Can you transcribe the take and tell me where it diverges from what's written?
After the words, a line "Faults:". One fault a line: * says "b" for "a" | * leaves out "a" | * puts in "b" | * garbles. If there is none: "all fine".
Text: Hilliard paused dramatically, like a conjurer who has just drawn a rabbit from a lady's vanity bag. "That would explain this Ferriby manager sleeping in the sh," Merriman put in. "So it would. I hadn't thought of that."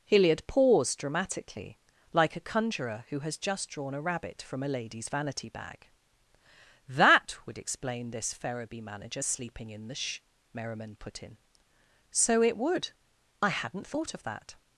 Hilliard paused dramatically, like a conjurer who has just drawn a rabbit from a lady's vanity bag. "That would explain this Ferriby manager sleeping in the sh," Merriman put in. "So it would. I hadn't thought of that."
Faults:
all fine